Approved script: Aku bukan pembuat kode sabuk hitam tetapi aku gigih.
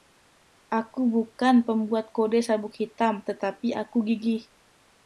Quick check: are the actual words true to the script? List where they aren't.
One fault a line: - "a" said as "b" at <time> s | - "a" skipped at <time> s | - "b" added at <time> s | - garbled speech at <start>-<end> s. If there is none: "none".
none